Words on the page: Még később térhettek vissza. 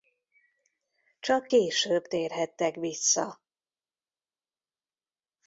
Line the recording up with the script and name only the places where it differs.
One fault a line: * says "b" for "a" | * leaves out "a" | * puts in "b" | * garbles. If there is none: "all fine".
* says "Csak" for "Még"